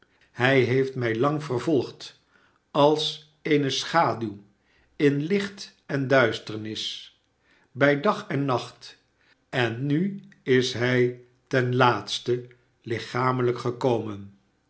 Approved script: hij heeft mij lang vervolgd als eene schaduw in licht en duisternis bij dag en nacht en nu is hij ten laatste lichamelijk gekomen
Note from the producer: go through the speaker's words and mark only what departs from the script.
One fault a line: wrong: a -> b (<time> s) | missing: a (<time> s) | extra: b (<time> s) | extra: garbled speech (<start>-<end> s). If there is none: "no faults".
no faults